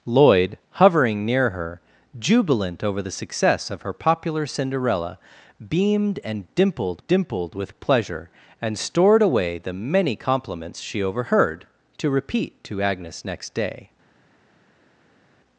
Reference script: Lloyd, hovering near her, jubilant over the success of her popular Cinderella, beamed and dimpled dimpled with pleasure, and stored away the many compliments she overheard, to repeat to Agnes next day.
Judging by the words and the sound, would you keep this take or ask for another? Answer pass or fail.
pass